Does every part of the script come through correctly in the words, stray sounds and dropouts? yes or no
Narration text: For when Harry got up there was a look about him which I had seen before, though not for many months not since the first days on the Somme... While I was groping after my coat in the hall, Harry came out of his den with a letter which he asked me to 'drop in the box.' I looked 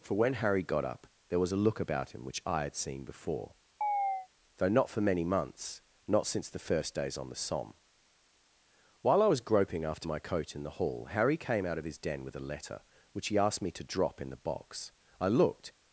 no